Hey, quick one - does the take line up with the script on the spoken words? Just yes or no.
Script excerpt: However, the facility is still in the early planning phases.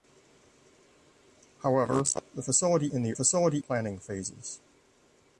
no